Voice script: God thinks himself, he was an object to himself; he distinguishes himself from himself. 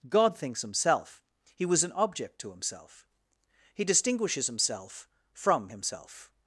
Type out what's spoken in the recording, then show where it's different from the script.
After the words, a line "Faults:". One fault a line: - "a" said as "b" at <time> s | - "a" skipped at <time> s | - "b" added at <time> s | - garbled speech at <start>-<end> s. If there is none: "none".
God thinks himself, he was an object to himself; he distinguishes himself from himself.
Faults:
none